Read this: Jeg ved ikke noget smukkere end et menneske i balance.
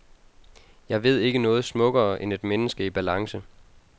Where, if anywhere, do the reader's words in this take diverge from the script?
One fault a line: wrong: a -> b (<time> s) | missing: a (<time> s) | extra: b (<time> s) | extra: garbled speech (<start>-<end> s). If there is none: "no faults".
no faults